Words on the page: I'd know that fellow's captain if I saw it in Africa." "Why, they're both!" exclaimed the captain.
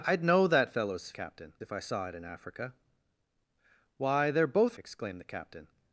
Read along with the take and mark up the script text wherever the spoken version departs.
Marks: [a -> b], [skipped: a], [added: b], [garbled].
I'd know that fellow's captain if I saw it in Africa." "Why, they're both!" exclaimed the captain.